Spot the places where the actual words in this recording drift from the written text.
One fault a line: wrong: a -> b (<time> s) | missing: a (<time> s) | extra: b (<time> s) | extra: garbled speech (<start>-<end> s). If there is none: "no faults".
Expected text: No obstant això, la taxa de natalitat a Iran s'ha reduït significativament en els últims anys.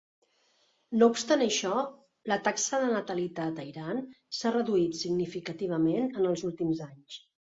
no faults